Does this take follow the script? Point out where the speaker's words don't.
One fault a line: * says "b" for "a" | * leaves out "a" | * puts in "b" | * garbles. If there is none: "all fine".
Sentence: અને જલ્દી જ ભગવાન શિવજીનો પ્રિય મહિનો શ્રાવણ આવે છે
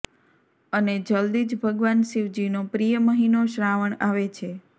all fine